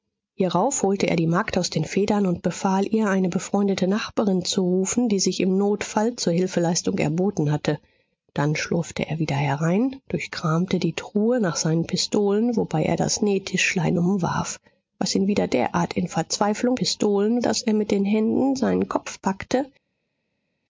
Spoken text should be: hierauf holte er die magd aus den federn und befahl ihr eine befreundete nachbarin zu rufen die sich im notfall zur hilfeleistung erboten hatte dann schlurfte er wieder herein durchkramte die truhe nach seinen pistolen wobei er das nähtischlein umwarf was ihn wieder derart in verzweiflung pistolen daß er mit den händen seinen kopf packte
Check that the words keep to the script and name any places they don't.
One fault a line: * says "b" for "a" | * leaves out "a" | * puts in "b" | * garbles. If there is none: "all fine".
all fine